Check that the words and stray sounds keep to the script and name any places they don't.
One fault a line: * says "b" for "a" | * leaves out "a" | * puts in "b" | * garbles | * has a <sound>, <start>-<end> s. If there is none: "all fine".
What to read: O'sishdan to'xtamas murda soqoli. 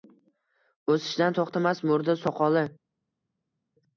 all fine